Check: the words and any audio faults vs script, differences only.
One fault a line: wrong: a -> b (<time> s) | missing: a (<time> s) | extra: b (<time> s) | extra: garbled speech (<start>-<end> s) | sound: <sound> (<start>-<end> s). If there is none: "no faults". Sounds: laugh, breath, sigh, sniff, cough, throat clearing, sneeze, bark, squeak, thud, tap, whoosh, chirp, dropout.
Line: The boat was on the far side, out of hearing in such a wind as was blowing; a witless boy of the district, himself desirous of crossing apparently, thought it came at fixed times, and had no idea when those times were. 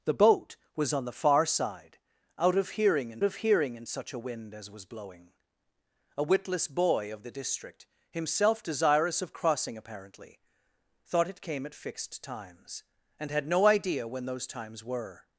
extra: of hearing in (3.2 s)